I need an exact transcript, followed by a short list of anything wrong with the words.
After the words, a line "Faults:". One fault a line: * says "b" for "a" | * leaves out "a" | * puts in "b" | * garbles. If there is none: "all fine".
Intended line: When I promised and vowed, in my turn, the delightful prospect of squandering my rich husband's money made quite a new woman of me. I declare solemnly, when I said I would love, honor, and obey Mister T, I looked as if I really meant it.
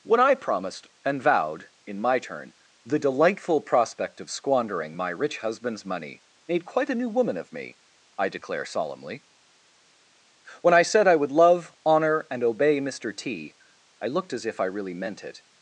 When I promised and vowed, in my turn, the delightful prospect of squandering my rich husband's money made quite a new woman of me. I declare solemnly, when I said I would love, honor, and obey Mister T, I looked as if I really meant it.
Faults:
all fine